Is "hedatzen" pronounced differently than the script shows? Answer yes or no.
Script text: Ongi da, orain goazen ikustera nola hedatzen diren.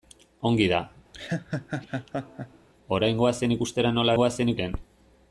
yes